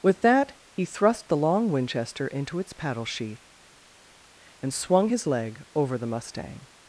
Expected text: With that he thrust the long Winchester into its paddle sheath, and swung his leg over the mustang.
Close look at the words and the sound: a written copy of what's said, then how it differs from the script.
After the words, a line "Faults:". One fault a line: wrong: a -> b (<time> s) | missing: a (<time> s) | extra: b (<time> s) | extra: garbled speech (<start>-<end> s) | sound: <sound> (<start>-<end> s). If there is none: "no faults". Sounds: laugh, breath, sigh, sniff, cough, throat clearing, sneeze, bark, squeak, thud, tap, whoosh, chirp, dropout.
With that he thrust the long Winchester into its paddle sheath, and swung his leg over the mustang.
Faults:
no faults